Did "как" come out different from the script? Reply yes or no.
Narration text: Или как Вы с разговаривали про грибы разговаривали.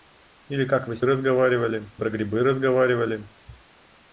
no